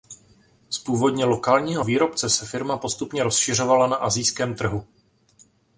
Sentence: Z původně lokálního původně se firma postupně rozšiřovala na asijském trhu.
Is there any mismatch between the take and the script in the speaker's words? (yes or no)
yes